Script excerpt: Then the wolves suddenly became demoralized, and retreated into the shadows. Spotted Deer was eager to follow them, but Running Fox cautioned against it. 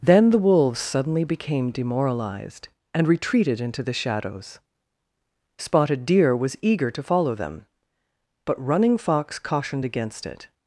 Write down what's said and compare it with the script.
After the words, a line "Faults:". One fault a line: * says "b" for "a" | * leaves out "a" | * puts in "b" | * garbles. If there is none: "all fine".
Then the wolves suddenly became demoralized, and retreated into the shadows. Spotted Deer was eager to follow them, but Running Fox cautioned against it.
Faults:
all fine